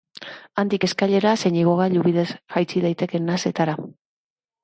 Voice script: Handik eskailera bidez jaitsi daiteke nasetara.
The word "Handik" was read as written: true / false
true